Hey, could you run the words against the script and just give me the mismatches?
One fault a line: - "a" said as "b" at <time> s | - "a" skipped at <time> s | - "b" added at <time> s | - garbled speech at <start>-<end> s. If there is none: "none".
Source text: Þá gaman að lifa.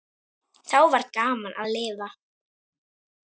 - "var" added at 0.9 s